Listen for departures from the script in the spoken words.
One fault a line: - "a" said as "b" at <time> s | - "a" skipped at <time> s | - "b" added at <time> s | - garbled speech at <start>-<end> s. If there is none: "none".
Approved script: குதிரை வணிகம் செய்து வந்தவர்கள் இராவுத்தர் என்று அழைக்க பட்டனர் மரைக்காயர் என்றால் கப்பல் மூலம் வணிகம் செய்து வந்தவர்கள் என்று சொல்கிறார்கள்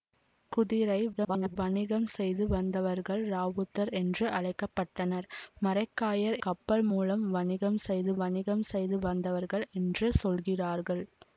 - garbled speech at 1.1-1.6 s
- "என்றால்" skipped at 6.4 s
- "வணிகம் செய்து" added at 8.2 s